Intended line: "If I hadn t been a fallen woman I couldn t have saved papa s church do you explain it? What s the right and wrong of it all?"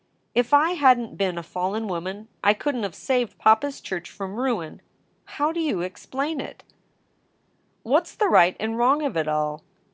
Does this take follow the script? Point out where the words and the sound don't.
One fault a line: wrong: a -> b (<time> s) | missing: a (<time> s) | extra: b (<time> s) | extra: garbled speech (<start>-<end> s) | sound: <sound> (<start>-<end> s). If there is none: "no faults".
extra: from ruin How (4.1 s)